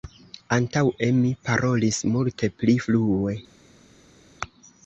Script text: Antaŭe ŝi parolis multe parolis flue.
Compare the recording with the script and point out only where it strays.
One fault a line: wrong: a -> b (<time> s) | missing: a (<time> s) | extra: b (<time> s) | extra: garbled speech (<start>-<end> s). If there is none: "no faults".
wrong: ŝi -> mi (1.2 s)
wrong: parolis -> pli (2.6 s)